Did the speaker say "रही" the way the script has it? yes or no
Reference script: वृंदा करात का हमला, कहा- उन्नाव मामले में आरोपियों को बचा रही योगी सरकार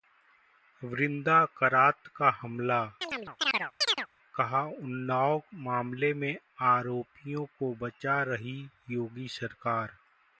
yes